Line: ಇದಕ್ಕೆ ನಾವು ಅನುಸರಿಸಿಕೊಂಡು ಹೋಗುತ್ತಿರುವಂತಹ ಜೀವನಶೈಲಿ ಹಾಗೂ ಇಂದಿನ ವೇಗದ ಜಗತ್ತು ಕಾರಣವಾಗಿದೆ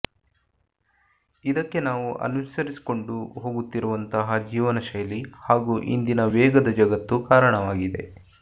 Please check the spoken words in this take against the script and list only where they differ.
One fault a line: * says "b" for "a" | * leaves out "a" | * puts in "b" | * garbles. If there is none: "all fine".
all fine